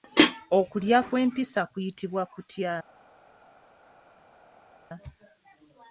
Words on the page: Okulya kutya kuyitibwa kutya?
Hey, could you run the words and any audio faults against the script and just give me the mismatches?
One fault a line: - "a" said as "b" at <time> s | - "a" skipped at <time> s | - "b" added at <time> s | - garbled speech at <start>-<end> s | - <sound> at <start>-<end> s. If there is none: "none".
- "kutya" said as "kw'empisa" at 1.1 s